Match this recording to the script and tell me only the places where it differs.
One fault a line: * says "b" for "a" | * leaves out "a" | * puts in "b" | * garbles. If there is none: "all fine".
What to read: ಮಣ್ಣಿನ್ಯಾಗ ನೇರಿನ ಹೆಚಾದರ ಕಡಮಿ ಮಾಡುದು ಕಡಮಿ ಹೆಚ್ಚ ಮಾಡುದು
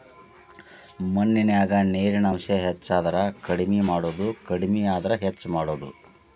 * puts in "ಅಂಶ"
* puts in "ಆದ್ರ"